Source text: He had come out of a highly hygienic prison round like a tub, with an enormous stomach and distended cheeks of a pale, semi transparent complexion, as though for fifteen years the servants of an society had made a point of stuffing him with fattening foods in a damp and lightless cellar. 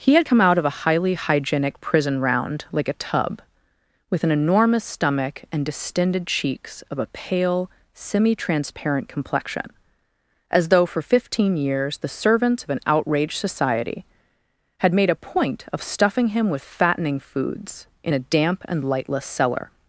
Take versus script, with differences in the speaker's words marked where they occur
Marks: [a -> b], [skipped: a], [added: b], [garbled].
He had come out of a highly hygienic prison round like a tub, with an enormous stomach and distended cheeks of a pale, semi transparent complexion, as though for fifteen years the servants of an [added: outraged] society had made a point of stuffing him with fattening foods in a damp and lightless cellar.